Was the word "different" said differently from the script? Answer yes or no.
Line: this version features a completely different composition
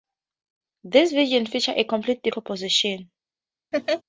yes